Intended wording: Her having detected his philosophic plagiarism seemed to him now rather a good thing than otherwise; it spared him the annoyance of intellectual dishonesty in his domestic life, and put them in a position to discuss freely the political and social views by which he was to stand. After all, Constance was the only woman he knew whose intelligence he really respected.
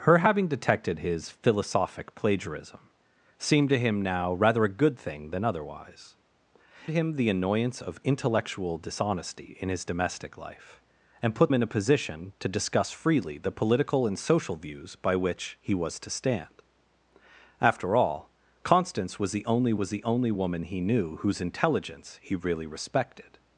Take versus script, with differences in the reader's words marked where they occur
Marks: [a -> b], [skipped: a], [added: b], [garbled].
Her having detected his philosophic plagiarism seemed to him now rather a good thing than otherwise; [skipped: it spared] him the annoyance of intellectual dishonesty in his domestic life, and put [skipped: them] in a position to discuss freely the political and social views by which he was to stand. After all, Constance was the only [added: was the only] woman he knew whose intelligence he really respected.